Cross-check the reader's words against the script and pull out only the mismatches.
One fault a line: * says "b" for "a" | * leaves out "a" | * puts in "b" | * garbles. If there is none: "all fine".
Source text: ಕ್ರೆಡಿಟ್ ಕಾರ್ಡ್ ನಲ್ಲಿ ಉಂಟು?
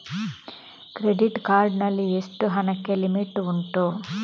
* puts in "ಎಷ್ಟು ಹಣಕ್ಕೆ ಲಿಮಿಟ್"